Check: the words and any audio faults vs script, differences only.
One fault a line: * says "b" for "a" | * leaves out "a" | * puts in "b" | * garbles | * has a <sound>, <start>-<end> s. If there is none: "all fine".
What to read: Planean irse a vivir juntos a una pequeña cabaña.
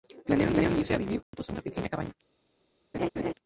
* has a dropout, 1.2-1.3 s
* has a laugh, 2.9-3.3 s